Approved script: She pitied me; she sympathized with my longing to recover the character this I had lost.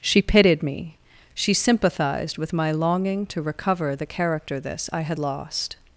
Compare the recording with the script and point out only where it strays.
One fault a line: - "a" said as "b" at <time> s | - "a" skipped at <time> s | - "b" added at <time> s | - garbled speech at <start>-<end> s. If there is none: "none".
none